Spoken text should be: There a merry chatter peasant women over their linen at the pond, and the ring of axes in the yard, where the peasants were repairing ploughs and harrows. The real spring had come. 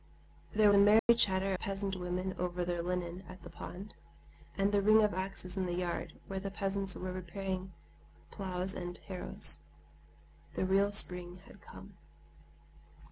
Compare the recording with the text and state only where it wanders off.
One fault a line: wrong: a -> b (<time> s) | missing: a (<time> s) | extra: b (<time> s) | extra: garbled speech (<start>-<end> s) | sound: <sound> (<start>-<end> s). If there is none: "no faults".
sound: dropout (1.0-1.1 s)